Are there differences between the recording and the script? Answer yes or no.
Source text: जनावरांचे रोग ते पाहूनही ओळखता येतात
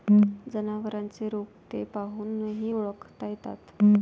no